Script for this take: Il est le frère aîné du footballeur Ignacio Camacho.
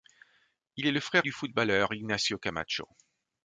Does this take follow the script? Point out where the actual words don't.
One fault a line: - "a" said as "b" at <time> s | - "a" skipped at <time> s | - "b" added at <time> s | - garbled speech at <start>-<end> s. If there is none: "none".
- "aîné" skipped at 1.3 s